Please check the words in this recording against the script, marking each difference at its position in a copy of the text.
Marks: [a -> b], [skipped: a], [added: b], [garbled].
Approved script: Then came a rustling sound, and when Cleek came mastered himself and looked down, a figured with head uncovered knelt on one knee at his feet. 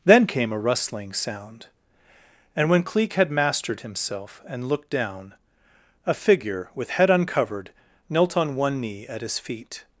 Then came a rustling sound, and when Cleek [came -> had] mastered himself and looked down, a [figured -> figure] with head uncovered knelt on one knee at his feet.